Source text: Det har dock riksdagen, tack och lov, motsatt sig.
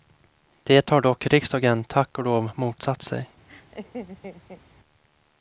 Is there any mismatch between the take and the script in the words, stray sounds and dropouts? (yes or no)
yes